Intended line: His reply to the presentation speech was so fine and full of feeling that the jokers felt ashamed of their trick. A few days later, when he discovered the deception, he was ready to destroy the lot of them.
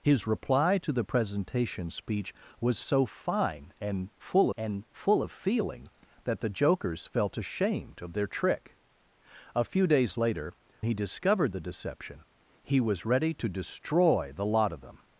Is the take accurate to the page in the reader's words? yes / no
no